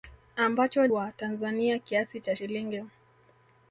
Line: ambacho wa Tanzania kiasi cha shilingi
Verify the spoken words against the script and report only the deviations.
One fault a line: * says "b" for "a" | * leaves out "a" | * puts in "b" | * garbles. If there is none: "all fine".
all fine